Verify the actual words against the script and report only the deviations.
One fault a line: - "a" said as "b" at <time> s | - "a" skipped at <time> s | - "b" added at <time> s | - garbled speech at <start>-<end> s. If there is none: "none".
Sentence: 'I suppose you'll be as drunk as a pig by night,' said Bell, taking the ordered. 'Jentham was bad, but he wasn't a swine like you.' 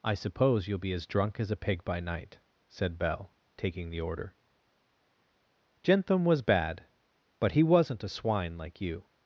- "ordered" said as "order" at 4.0 s